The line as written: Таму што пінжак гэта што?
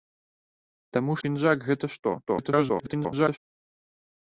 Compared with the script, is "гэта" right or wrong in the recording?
right